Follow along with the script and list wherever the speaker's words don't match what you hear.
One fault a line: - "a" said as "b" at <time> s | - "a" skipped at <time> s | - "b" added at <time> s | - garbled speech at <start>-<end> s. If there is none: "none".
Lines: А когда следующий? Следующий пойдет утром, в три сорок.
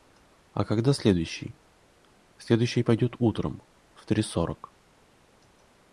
none